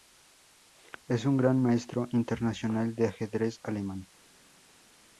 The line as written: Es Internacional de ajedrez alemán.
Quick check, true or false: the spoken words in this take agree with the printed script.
false